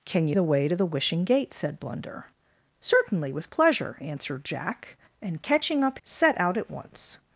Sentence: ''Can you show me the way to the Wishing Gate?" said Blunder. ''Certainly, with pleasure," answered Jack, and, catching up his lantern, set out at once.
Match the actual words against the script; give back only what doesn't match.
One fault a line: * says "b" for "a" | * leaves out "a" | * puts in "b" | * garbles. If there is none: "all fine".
* leaves out "show me"
* leaves out "his lantern"